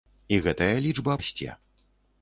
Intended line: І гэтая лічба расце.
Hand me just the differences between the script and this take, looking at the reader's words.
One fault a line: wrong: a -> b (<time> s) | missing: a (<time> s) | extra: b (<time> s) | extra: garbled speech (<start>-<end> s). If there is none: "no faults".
no faults